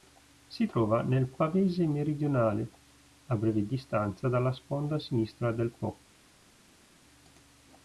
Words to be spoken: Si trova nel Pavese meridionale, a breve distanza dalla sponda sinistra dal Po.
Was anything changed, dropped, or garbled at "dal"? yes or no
yes